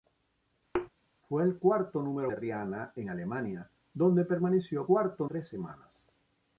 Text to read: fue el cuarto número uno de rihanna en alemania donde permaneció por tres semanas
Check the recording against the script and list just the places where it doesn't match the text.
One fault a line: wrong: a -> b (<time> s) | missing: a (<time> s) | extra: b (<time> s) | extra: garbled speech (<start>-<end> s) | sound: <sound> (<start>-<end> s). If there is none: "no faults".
sound: thud (0.7-0.9 s)
missing: uno (2.3 s)
wrong: por -> cuarto (4.8 s)